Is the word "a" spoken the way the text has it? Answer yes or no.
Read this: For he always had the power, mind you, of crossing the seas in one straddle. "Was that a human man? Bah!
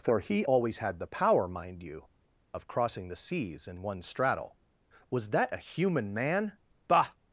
yes